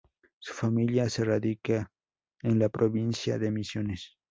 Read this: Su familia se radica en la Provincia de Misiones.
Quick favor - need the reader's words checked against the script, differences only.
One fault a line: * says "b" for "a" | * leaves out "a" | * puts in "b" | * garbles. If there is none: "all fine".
all fine